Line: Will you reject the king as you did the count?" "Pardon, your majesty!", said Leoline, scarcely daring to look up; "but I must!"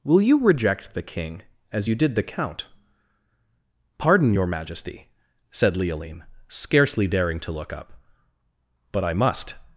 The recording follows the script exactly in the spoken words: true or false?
true